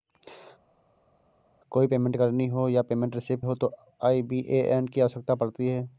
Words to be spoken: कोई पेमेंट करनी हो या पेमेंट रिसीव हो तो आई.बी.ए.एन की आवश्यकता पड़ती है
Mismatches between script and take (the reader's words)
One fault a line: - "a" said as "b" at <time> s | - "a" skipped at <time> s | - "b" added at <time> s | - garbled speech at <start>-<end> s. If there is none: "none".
none